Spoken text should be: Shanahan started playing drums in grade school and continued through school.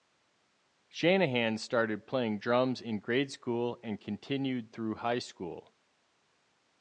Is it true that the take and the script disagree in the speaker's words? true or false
true